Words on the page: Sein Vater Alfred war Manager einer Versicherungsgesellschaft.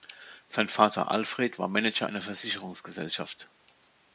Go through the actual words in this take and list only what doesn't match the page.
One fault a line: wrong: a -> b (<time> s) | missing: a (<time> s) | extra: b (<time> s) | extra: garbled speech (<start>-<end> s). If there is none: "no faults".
no faults